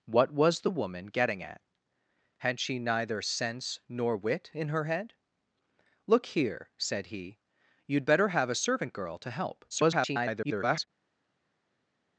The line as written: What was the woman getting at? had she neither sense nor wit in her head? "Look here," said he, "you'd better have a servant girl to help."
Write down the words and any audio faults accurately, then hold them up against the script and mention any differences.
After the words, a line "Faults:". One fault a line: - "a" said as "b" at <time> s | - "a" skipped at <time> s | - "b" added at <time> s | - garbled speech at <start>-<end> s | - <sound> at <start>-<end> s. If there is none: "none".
What was the woman getting at? had she neither sense nor wit in her head? "Look here," said he, "you'd better have a servant girl to help." [garbled]
Faults:
- garbled speech at 9.7-10.9 s